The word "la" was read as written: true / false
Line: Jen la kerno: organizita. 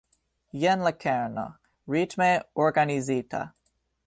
true